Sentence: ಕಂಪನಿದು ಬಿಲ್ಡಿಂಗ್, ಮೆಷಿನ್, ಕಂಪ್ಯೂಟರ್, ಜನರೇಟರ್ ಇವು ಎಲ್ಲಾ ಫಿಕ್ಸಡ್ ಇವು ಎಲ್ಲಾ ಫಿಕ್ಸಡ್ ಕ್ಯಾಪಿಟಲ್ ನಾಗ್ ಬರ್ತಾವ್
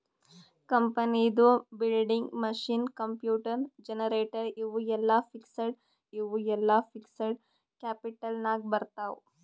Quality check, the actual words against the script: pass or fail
pass